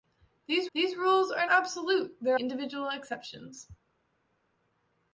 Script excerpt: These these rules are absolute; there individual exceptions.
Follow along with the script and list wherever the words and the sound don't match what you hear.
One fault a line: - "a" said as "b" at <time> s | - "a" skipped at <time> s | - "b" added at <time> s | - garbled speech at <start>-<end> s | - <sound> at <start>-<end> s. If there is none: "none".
none